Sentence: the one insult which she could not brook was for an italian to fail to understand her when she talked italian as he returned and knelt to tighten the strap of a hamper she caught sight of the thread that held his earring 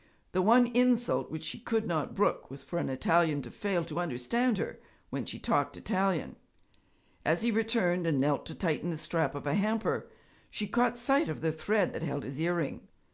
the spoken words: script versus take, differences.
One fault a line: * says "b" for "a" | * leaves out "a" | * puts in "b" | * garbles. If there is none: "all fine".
all fine